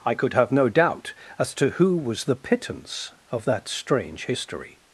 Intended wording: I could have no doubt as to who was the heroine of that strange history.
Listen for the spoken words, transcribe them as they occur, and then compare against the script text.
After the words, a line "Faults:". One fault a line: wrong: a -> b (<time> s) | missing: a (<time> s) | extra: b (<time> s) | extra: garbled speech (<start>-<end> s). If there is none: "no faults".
I could have no doubt as to who was the pittance of that strange history.
Faults:
wrong: heroine -> pittance (2.4 s)